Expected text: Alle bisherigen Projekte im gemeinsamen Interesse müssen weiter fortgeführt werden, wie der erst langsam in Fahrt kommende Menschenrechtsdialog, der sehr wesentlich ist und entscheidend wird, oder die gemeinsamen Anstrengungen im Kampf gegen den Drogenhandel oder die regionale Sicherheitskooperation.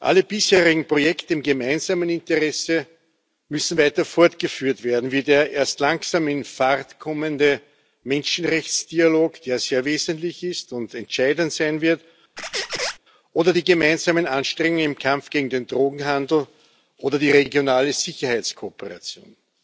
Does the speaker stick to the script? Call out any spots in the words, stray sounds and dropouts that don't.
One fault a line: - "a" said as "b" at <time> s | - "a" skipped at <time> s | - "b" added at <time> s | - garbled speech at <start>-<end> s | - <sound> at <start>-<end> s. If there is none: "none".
- "sein" added at 11.5 s
- squeak at 12.4-13.0 s